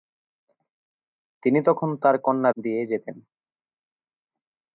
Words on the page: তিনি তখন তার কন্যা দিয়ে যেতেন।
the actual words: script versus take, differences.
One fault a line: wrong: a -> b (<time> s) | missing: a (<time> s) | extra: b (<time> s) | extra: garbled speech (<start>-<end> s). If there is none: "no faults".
no faults